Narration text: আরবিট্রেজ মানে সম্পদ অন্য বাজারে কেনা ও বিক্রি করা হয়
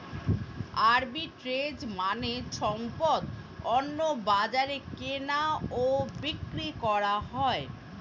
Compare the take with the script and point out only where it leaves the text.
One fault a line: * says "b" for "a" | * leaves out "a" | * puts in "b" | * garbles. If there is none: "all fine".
all fine